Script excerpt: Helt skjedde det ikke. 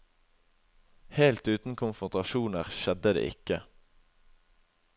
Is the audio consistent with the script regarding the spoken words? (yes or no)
no